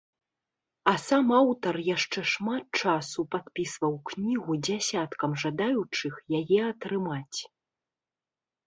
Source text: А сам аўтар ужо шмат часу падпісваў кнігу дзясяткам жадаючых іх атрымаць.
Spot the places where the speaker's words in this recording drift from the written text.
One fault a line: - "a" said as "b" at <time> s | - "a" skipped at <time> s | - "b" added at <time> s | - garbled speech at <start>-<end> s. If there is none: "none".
- "ужо" said as "яшчэ" at 1.9 s
- "іх" said as "яе" at 6.4 s